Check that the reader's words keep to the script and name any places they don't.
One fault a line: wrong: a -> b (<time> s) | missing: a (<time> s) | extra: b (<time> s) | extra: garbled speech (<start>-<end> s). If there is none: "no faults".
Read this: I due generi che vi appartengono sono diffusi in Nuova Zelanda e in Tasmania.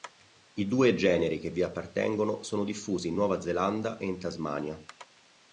no faults